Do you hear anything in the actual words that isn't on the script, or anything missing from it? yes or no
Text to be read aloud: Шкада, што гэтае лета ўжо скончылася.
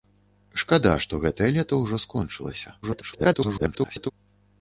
yes